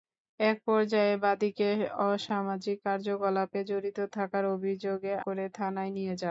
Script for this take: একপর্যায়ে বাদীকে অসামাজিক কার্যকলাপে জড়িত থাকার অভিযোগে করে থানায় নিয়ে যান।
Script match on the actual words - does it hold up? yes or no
yes